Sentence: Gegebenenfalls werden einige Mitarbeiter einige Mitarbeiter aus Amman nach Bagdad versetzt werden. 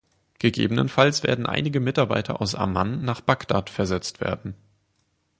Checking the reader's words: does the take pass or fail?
fail